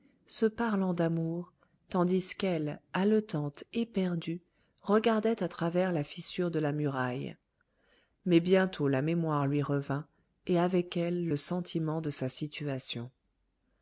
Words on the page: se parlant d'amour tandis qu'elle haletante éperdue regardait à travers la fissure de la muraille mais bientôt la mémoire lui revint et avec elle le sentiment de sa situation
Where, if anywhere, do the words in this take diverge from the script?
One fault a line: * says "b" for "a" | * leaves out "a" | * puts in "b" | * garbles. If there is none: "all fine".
all fine